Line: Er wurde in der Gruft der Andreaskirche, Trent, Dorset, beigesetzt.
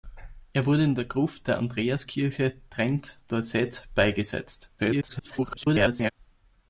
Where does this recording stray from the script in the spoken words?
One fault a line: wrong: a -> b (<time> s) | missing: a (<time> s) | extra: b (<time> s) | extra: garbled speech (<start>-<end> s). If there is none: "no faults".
extra: garbled speech (4.8-6.1 s)